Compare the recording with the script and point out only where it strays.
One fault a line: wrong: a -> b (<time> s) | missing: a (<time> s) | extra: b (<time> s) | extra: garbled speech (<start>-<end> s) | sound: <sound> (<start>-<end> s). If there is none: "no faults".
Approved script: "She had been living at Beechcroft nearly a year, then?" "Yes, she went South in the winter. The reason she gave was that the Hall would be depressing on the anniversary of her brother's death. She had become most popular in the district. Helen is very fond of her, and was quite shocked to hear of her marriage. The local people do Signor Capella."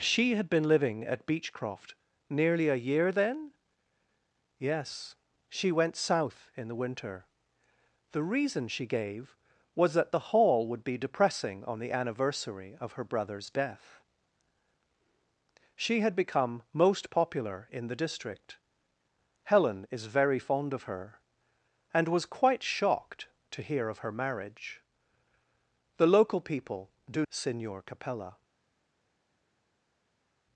no faults